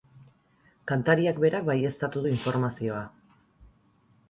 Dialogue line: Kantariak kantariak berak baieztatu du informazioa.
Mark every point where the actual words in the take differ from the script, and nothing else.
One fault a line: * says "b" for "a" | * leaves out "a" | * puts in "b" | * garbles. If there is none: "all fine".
* leaves out "kantariak"